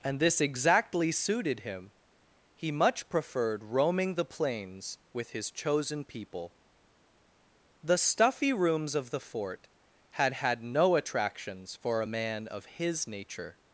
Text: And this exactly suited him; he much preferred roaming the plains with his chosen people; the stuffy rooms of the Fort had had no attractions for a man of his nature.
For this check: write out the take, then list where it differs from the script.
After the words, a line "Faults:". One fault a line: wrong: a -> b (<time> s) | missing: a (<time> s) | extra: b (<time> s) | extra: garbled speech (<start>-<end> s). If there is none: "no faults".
And this exactly suited him; he much preferred roaming the plains with his chosen people; the stuffy rooms of the Fort had had no attractions for a man of his nature.
Faults:
no faults